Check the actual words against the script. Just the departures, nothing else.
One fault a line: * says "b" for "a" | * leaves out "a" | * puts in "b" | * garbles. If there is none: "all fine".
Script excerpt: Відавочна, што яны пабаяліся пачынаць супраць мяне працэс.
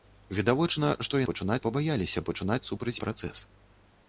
* says "пачынаць" for "яны"
* leaves out "мяне"